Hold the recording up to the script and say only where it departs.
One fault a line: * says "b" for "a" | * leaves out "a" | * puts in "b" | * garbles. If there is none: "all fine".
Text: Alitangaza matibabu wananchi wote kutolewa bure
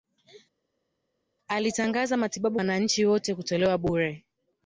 all fine